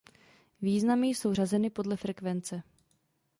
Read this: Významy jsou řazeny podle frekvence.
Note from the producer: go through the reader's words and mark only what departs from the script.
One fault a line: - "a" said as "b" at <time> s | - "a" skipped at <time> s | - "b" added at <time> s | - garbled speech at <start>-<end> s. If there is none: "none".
none